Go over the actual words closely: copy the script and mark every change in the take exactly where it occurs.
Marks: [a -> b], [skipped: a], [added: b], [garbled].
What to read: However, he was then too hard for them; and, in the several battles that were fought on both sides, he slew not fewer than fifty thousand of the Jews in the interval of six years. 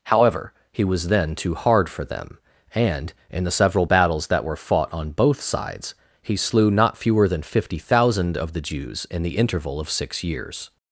However, he was then too hard for them; and, in the several battles that were fought on both sides, he slew not fewer than fifty thousand of the Jews in the interval of six years.